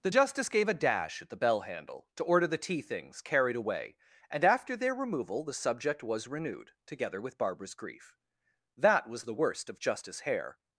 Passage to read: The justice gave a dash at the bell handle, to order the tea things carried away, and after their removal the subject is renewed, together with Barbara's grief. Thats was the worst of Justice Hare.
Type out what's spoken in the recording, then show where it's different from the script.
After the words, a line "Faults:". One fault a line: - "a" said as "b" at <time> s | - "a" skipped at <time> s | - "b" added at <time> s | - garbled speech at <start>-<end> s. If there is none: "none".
The justice gave a dash at the bell handle, to order the tea things carried away, and after their removal the subject was renewed, together with Barbara's grief. That was the worst of Justice Hare.
Faults:
- "is" said as "was" at 6.0 s
- "Thats" said as "That" at 8.8 s